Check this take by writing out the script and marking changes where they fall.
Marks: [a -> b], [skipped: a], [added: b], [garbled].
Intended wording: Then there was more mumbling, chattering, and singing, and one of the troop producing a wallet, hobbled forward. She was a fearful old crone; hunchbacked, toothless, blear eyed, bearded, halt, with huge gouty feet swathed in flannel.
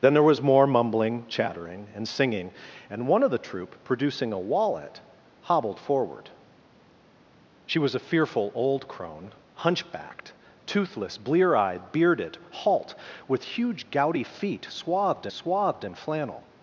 Then there was more mumbling, chattering, and singing, and one of the troop producing a wallet, hobbled forward. She was a fearful old crone; hunchbacked, toothless, blear eyed, bearded, halt, with huge gouty feet swathed [added: swathed] in flannel.